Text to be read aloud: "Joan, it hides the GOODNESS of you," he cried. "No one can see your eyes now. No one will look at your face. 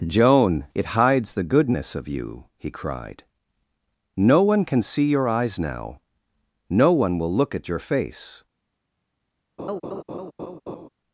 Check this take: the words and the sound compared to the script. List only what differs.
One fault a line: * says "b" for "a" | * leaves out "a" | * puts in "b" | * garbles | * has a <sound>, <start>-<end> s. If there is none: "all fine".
* has a laugh, 9.6-10.9 s